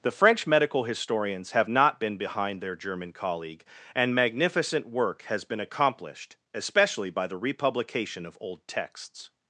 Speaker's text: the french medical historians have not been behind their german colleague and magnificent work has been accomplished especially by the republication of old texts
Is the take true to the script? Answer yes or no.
yes